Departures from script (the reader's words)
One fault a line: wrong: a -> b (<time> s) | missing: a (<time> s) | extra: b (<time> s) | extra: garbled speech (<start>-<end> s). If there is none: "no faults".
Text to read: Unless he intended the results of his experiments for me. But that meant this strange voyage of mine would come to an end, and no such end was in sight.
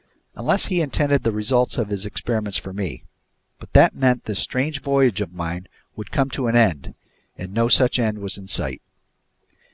no faults